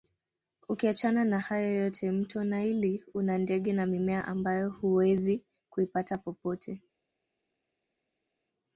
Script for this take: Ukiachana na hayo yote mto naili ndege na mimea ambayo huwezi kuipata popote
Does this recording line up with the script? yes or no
no